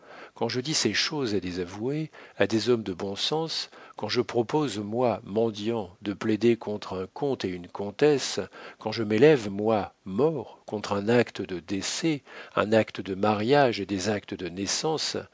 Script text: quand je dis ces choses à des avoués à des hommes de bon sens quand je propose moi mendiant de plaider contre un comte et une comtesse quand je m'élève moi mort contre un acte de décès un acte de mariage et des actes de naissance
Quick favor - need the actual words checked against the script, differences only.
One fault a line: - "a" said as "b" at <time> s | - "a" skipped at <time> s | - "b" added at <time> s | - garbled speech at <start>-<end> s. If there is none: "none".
none